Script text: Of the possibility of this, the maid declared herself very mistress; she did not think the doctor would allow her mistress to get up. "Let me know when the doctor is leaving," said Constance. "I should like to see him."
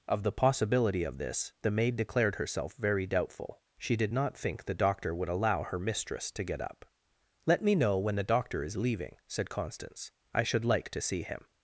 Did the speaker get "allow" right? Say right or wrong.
right